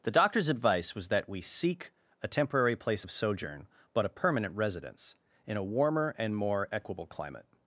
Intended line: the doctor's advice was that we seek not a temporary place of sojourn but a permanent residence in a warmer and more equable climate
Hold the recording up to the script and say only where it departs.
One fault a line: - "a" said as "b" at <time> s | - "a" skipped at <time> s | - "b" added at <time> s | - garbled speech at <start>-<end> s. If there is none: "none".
- "not" skipped at 1.9 s